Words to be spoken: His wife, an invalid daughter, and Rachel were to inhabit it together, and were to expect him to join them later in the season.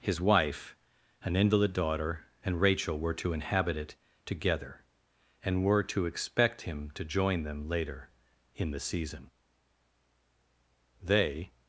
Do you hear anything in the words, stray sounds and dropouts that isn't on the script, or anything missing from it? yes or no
yes